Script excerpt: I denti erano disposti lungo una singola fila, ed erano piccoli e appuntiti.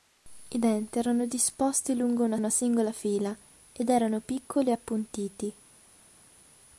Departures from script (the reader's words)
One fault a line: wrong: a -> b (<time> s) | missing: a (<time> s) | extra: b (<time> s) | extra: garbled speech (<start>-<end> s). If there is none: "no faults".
extra: una (2.3 s)